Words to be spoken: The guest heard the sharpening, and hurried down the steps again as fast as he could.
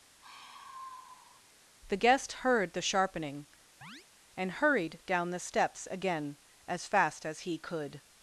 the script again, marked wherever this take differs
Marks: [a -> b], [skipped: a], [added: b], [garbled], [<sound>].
[sigh] The guest heard the sharpening, [chirp] and hurried down the steps again as fast as he could.